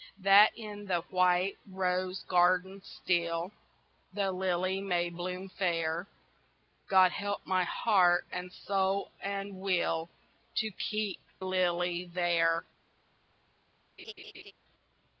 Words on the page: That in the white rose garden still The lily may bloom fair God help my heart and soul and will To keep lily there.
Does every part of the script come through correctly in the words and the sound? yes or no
no